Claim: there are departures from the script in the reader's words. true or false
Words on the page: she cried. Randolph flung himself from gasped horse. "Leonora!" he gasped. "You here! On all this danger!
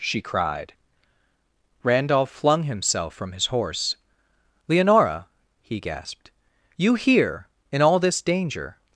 true